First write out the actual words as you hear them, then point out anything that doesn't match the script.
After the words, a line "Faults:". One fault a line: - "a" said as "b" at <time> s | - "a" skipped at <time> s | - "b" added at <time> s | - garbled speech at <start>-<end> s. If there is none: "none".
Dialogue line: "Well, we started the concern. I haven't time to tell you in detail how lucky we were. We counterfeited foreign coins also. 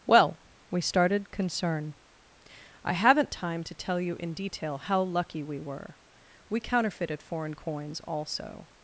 "Well, we started concern. I haven't time to tell you in detail how lucky we were. We counterfeited foreign coins also.
Faults:
- "the" skipped at 1.3 s